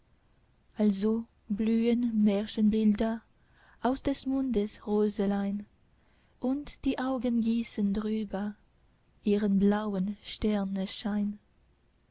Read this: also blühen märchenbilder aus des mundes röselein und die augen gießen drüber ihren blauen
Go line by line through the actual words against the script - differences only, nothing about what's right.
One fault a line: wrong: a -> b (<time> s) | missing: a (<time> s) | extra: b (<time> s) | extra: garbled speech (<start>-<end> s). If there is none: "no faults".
no faults